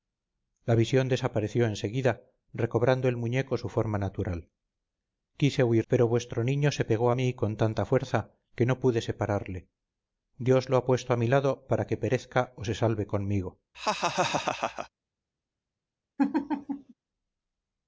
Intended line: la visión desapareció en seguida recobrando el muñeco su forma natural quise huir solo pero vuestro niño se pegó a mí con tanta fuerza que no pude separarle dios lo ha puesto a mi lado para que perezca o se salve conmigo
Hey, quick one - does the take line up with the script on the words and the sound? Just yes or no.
no